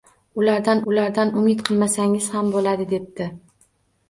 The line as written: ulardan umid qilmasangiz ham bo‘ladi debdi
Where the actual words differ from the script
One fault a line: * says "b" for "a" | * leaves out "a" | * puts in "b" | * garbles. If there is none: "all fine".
* puts in "ulardan"